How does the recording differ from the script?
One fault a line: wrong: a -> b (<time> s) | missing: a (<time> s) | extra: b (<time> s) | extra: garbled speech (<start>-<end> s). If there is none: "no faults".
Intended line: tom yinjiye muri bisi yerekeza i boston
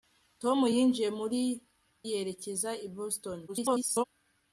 missing: bisi (1.4 s)
extra: garbled speech (3.5-4.0 s)